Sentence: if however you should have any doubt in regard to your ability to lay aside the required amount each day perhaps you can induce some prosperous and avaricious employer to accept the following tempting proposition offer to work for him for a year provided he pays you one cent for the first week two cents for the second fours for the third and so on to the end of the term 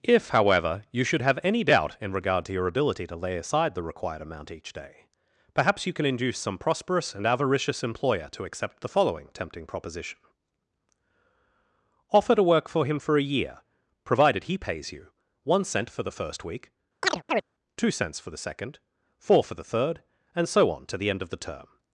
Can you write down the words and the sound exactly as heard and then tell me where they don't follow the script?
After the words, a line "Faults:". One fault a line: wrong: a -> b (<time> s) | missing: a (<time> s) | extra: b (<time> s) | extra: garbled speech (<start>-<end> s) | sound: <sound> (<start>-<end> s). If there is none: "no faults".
if however you should have any doubt in regard to your ability to lay aside the required amount each day perhaps you can induce some prosperous and avaricious employer to accept the following tempting proposition offer to work for him for a year provided he pays you one cent for the first week two cents for the second four for the third and so on to the end of the term
Faults:
sound: chirp (17.0-17.4 s)
wrong: fours -> four (19.2 s)